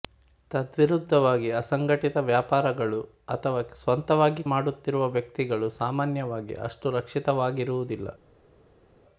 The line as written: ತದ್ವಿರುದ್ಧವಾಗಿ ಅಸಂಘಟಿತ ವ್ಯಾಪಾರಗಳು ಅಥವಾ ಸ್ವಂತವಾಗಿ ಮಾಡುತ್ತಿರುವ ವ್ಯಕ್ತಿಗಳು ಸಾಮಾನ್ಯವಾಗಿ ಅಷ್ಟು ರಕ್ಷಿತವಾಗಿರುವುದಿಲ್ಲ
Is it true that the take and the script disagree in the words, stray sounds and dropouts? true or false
false